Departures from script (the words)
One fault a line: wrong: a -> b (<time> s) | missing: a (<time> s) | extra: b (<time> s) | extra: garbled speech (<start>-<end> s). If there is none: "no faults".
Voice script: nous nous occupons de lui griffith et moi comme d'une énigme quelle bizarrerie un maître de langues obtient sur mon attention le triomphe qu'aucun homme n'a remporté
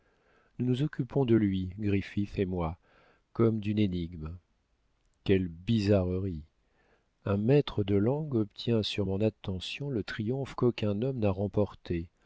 no faults